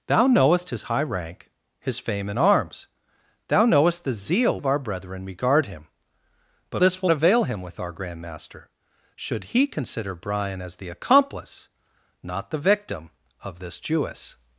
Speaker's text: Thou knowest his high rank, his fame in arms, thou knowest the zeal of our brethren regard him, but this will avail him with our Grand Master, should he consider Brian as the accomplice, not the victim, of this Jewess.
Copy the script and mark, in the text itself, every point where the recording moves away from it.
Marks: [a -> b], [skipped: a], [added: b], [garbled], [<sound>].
Thou knowest his high rank, his fame in arms, thou knowest the zeal of our brethren regard him, but this will avail him with our Grand Master, should he consider Brian as the accomplice, not the victim, of this Jewess.